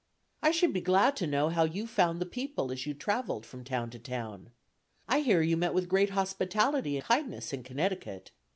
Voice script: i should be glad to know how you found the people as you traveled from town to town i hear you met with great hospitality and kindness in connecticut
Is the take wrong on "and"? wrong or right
wrong